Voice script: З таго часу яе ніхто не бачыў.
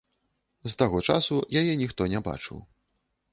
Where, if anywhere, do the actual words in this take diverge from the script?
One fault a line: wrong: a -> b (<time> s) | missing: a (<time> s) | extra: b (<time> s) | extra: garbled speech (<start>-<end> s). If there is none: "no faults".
no faults